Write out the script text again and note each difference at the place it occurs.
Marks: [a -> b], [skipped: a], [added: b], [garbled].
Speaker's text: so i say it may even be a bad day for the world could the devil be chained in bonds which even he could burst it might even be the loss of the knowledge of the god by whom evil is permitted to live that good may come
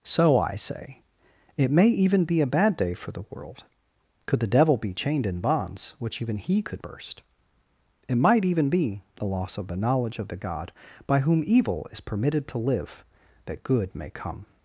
so i say it may even be a bad day for the world could the devil be chained in bonds which even he could burst it might even be the loss of the knowledge of the god by whom evil is permitted to live that good may come